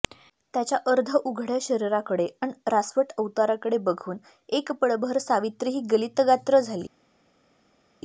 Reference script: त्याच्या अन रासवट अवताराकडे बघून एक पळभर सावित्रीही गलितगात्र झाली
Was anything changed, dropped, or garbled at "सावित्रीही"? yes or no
no